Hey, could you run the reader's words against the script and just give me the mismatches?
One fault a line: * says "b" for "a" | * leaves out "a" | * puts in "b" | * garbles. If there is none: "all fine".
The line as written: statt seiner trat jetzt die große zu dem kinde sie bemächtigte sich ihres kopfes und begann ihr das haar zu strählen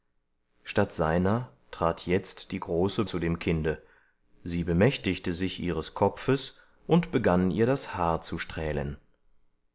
all fine